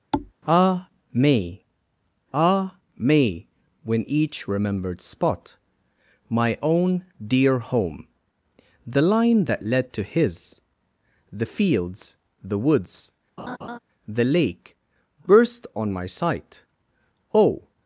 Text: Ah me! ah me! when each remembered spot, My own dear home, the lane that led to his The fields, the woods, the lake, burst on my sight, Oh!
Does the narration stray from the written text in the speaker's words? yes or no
yes